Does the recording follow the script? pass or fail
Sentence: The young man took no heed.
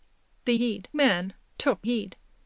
fail